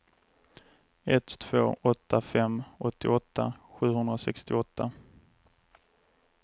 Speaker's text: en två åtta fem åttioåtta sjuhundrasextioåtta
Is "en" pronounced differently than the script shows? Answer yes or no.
yes